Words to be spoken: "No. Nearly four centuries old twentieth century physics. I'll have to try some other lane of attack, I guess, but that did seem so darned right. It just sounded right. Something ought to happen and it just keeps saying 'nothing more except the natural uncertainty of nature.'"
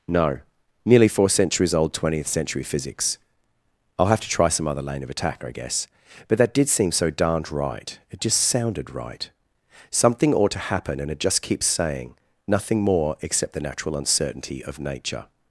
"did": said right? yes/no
yes